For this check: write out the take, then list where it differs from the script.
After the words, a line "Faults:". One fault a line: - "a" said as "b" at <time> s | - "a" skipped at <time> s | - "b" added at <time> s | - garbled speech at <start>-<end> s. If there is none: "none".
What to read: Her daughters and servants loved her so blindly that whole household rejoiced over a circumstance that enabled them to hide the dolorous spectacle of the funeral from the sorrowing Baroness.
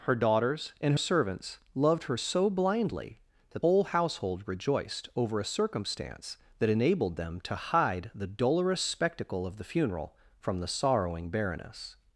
Her daughters and servants loved her so blindly that whole household rejoiced over a circumstance that enabled them to hide the dolorous spectacle of the funeral from the sorrowing Baroness.
Faults:
none